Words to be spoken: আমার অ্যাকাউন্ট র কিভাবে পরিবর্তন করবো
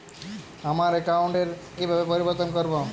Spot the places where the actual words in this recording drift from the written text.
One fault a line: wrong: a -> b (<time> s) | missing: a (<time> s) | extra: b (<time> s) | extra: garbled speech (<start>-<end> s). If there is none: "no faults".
no faults